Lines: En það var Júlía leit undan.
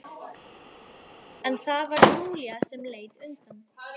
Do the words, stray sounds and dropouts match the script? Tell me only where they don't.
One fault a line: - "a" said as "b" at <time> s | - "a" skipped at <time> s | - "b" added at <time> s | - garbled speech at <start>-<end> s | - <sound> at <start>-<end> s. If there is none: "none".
- "sem" added at 2.7 s